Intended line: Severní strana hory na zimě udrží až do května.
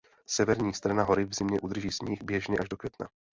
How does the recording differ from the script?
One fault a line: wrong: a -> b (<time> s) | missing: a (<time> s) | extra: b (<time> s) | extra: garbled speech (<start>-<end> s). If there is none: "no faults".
wrong: na -> v (1.2 s)
extra: sníh běžně (1.9 s)